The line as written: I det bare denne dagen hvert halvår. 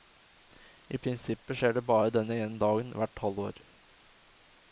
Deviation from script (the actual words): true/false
true